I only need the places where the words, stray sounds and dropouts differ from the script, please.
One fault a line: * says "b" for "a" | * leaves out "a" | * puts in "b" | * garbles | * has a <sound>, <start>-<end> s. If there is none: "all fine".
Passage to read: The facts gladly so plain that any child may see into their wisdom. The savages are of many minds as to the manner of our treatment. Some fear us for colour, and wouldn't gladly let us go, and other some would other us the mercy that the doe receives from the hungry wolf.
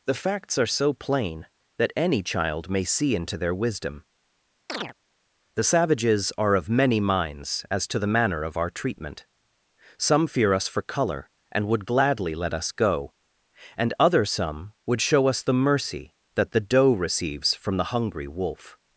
* says "are" for "gladly"
* has a chirp, 4.7-4.9 s
* says "would" for "wouldn't"
* says "show" for "other"